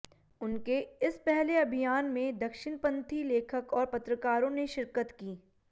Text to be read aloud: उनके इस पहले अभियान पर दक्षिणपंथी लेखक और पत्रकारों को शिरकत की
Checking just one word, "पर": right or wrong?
wrong